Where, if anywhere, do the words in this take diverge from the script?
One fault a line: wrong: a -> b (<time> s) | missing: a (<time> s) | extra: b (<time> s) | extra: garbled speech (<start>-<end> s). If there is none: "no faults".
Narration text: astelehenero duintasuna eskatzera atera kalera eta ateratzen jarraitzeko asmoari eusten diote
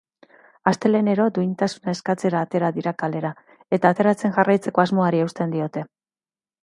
extra: dira (2.8 s)